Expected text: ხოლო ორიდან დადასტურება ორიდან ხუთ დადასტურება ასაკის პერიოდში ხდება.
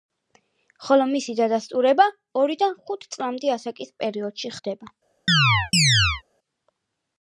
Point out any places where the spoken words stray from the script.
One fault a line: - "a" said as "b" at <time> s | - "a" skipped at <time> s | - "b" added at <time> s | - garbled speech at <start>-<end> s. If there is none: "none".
- "ორიდან" said as "მისი" at 1.1 s
- "დადასტურება" said as "წლამდე" at 3.2 s